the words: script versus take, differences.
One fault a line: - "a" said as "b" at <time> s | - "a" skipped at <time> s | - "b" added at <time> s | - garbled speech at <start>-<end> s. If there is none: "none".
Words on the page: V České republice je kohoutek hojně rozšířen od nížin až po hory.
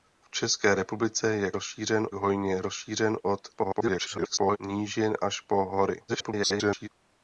- "kohoutek" said as "rozšířen" at 1.5 s
- garbled speech at 3.5-4.6 s
- garbled speech at 6.1-6.9 s